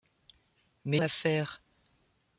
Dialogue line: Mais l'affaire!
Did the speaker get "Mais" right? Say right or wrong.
right